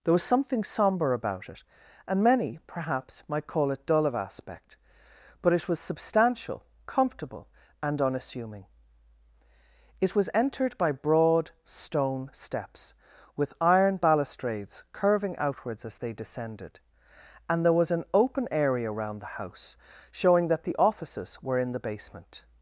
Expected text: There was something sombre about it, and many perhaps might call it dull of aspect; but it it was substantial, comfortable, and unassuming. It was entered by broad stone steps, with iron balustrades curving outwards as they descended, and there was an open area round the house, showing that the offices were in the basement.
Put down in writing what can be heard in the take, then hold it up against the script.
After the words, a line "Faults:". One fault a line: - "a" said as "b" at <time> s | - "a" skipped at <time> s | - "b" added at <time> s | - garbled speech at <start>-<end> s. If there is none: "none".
There was something sombre about it, and many perhaps might call it dull of aspect; but it was substantial, comfortable, and unassuming. It was entered by broad stone steps, with iron balustrades curving outwards as they descended, and there was an open area round the house, showing that the offices were in the basement.
Faults:
- "it" skipped at 5.7 s